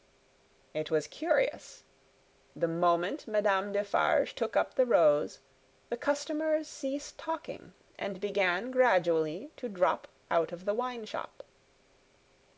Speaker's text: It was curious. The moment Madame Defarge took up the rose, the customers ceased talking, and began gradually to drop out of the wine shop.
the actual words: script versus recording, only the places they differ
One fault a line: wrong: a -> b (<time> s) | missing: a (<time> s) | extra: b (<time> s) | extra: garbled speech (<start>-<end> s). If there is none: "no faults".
no faults